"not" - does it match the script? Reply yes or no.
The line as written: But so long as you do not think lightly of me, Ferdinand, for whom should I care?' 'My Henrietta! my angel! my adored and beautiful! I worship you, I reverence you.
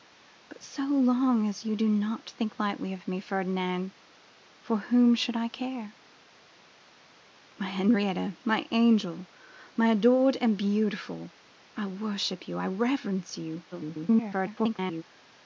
yes